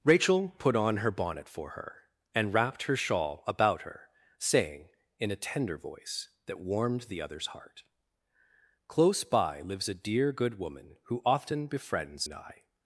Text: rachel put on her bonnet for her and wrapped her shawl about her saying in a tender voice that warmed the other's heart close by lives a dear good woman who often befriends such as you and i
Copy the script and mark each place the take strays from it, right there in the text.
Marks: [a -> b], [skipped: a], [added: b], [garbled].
rachel put on her bonnet for her and wrapped her shawl about her saying in a tender voice that warmed the other's heart close by lives a dear good woman who often befriends [skipped: such as you] and i